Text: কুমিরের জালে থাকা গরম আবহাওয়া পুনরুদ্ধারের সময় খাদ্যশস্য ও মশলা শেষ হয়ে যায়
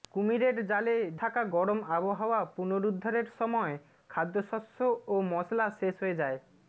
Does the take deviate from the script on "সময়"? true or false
false